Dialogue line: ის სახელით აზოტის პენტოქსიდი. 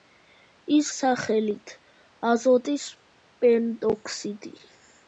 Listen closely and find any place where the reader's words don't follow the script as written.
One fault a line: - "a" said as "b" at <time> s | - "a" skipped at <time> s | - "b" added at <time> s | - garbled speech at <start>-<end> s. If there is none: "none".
none